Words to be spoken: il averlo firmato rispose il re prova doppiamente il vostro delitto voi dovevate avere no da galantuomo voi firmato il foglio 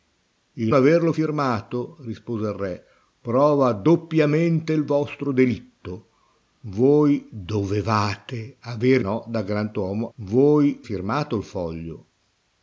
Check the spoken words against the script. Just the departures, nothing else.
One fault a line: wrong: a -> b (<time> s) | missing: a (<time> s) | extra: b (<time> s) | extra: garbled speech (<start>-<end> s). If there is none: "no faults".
no faults